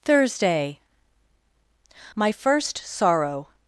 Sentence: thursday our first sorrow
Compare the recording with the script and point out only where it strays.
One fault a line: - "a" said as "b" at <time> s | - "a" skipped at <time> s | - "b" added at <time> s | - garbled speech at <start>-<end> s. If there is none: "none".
- "our" said as "my" at 2.1 s